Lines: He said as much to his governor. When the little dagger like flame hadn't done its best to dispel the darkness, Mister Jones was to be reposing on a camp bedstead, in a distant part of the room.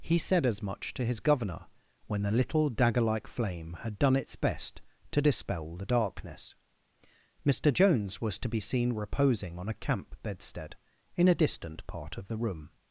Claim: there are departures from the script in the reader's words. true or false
true